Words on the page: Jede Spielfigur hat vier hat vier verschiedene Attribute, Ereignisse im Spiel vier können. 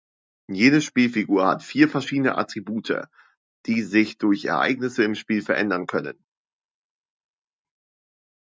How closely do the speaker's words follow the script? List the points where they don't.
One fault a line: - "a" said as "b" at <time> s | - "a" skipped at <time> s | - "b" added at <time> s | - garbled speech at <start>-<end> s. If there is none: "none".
- "hat vier verschiedene Attribute" said as "verschiedene Attribute die sich durch" at 1.9 s
- "vier" said as "verändern" at 5.4 s